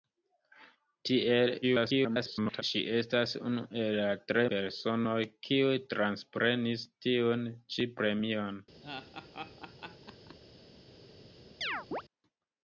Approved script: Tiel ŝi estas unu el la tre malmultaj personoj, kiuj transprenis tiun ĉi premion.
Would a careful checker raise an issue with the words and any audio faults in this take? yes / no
yes